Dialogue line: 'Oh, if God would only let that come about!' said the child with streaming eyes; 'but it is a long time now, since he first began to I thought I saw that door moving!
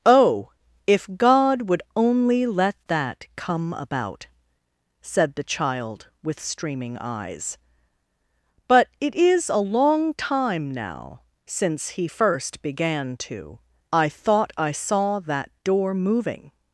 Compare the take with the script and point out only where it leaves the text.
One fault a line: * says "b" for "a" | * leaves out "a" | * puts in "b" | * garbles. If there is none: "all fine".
all fine